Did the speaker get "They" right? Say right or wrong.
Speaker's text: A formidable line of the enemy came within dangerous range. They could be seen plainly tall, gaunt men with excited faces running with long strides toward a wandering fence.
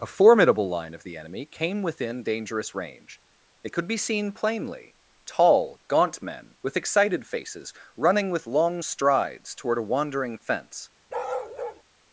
wrong